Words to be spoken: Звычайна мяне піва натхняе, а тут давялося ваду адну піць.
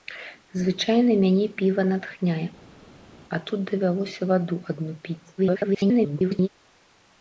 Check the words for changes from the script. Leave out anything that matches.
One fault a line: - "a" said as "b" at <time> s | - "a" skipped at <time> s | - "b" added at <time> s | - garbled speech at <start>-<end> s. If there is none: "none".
- garbled speech at 5.4-6.5 s